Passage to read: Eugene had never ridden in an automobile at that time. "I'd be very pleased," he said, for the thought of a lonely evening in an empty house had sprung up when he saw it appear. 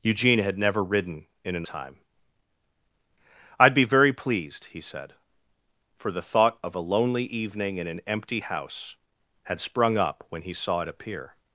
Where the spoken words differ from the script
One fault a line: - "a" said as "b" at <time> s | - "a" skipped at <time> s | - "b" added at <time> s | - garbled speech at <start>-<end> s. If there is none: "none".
- "automobile at that" skipped at 1.7 s